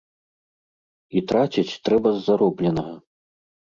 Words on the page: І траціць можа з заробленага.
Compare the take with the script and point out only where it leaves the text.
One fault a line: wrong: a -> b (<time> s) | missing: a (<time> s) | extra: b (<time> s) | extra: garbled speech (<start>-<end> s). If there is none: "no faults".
wrong: можа -> трэба (1.9 s)